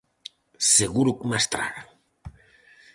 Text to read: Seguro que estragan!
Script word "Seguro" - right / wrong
right